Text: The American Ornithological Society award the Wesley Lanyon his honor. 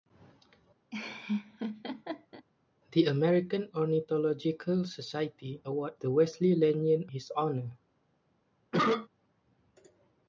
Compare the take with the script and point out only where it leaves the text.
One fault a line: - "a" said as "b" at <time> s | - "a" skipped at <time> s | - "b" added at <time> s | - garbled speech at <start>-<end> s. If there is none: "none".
none